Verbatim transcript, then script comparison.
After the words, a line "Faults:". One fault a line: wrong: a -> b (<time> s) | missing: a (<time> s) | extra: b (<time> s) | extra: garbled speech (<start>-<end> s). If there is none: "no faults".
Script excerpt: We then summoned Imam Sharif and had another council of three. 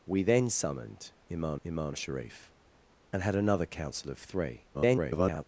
We then summoned Imam Imam Sharif and had another council of three. [garbled]
Faults:
extra: Imam (1.6 s)
extra: garbled speech (4.7-5.4 s)